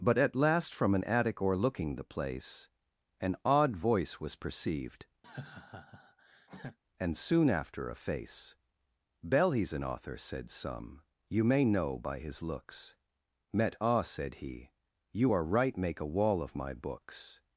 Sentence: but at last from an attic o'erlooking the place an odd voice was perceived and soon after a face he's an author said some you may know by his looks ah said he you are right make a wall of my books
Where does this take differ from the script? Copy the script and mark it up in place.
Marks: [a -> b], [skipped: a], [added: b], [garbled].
but at last from an attic o'erlooking the place an odd voice was perceived and soon after a face [added: bell] he's an author said some you may know by his looks [added: met] ah said he you are right make a wall of my books